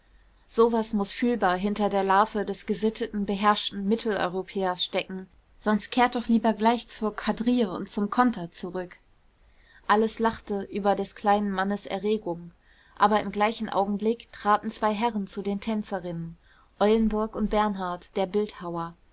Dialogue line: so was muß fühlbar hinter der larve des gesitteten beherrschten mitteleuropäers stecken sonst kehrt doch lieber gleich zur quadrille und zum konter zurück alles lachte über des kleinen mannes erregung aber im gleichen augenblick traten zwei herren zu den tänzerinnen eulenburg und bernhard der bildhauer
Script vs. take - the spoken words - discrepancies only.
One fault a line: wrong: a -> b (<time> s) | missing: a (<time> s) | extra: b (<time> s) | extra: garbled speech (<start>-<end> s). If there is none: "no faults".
no faults